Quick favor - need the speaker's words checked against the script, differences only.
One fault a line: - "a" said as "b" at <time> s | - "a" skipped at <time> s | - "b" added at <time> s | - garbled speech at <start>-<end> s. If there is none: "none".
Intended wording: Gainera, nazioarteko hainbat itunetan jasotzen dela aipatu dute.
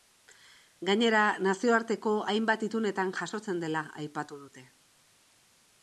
none